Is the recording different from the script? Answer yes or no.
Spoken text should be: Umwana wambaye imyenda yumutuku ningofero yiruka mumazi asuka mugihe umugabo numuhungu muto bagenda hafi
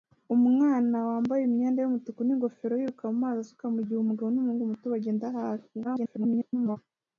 yes